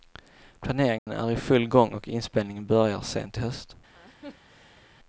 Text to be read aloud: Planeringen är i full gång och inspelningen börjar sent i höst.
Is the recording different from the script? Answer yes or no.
no